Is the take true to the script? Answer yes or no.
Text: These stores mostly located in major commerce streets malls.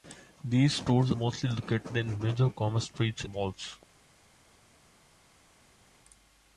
yes